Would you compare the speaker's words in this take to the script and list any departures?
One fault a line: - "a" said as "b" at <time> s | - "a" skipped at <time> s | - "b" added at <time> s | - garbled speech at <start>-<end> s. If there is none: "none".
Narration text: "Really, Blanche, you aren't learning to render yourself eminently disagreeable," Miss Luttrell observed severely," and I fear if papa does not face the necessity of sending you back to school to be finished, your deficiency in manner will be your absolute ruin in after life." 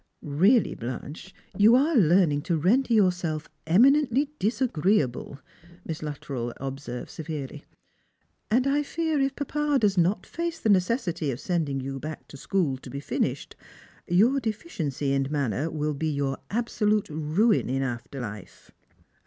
- "aren't" said as "are" at 1.8 s